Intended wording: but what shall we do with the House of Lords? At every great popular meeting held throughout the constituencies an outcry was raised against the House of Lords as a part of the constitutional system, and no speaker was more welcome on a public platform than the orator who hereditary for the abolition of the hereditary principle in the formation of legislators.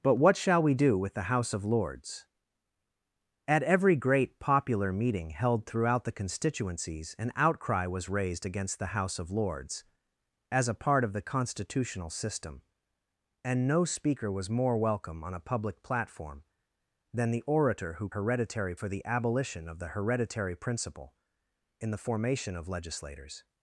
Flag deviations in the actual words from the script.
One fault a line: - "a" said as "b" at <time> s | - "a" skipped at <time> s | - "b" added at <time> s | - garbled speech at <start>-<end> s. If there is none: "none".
none